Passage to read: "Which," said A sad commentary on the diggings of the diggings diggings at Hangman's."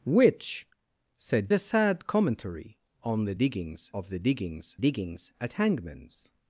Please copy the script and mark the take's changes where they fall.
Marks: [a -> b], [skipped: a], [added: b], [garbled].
"Which," said A sad commentary on the diggings of the diggings diggings at Hangman's."